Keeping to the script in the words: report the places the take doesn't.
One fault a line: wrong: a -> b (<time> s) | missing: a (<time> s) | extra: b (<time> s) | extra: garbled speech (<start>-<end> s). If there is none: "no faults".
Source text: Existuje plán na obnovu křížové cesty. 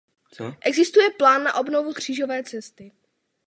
no faults